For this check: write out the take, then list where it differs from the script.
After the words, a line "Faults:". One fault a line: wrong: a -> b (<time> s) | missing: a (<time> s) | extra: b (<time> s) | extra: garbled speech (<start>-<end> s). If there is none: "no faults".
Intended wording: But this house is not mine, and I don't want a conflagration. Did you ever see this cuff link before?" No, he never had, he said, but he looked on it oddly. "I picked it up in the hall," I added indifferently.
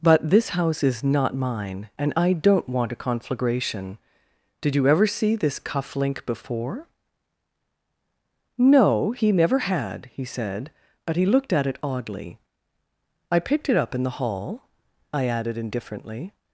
But this house is not mine, and I don't want a conflagration. Did you ever see this cuff link before?" No, he never had, he said, but he looked at it oddly. "I picked it up in the hall," I added indifferently.
Faults:
wrong: on -> at (11.5 s)